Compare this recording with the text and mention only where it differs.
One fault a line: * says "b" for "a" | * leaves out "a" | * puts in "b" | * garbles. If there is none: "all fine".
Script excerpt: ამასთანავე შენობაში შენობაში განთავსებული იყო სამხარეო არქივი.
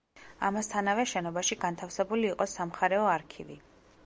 * leaves out "შენობაში"